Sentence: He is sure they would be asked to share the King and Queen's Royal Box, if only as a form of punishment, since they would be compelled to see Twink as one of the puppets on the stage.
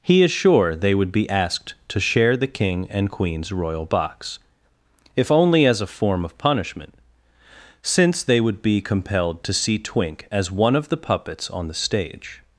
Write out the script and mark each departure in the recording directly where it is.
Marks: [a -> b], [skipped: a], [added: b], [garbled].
He is sure they would be asked to share the King and Queen's Royal Box, if only as a form of punishment, since they would be compelled to see Twink as one of the puppets on the stage.